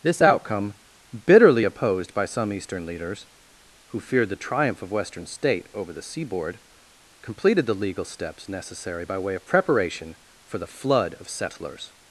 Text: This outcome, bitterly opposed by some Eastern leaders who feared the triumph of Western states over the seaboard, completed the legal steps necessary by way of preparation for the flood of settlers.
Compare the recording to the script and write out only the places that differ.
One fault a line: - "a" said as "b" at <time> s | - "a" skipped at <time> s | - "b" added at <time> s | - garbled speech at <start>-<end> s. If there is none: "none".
- "states" said as "state" at 5.2 s